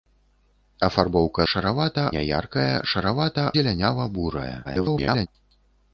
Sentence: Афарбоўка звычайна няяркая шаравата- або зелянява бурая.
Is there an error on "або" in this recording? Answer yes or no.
yes